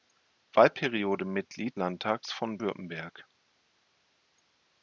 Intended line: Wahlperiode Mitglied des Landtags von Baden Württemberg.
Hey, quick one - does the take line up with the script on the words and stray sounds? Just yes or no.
no